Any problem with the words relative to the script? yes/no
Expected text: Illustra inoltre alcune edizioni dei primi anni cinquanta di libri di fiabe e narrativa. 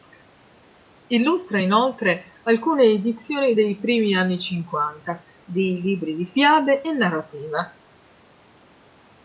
no